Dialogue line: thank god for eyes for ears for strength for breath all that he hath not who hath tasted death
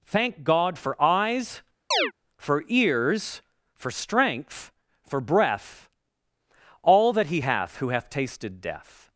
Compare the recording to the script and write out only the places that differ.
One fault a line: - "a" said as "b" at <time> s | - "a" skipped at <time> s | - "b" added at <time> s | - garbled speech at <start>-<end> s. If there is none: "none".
- "not" skipped at 7.8 s